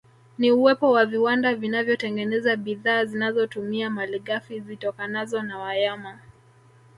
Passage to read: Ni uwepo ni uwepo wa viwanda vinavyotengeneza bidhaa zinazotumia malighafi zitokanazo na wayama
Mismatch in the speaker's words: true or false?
true